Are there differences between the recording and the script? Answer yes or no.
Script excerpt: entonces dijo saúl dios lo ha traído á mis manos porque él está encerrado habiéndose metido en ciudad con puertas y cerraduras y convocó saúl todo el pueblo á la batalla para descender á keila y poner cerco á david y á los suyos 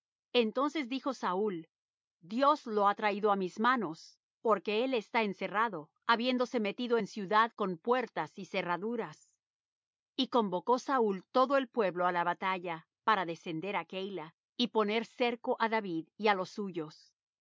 no